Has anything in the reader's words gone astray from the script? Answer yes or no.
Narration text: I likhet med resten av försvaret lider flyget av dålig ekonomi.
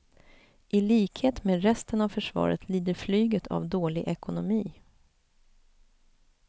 no